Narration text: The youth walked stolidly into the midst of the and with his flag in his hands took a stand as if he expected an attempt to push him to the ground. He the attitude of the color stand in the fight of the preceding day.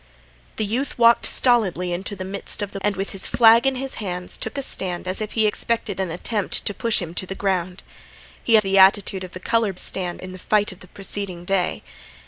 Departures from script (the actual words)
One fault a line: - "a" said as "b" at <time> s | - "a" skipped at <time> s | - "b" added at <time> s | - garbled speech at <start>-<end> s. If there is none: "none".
none